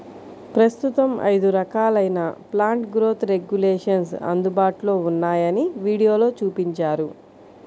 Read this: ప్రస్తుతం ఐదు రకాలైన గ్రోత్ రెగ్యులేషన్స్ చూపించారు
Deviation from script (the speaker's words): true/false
true